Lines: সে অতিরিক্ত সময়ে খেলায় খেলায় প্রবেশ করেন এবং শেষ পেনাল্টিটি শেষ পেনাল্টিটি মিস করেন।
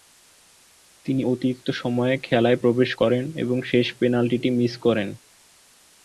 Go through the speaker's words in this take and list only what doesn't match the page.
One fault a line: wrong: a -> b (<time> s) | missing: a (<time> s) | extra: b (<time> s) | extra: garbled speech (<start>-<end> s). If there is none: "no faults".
wrong: সে -> তিনি (1.1 s)
missing: খেলায় (2.6 s)
missing: শেষ পেনাল্টিটি (4.5 s)